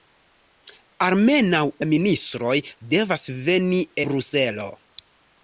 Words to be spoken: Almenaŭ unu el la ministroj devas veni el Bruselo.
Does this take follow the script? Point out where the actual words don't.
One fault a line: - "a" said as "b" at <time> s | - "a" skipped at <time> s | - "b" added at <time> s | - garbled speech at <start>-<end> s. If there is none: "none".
- "unu el" skipped at 1.6 s
- "el" skipped at 3.9 s